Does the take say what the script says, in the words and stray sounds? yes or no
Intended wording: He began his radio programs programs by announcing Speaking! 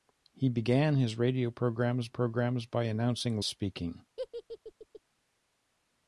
no